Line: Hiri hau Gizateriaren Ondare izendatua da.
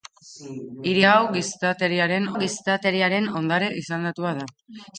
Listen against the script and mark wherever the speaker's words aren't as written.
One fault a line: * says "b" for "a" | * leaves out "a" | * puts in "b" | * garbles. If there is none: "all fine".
* puts in "Gizateriaren"